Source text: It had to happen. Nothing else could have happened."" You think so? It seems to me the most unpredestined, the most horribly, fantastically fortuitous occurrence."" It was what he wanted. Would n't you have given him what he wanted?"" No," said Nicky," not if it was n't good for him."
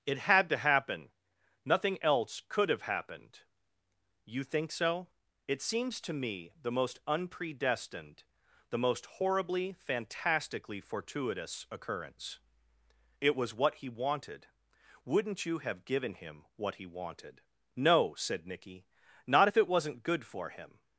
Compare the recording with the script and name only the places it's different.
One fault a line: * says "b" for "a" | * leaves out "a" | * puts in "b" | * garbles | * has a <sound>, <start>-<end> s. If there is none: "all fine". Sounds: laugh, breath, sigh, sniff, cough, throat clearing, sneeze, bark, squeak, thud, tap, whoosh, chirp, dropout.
all fine